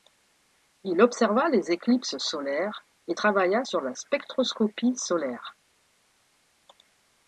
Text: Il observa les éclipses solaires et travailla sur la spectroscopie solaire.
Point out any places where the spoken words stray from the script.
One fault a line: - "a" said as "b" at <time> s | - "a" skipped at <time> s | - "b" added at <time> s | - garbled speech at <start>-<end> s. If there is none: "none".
none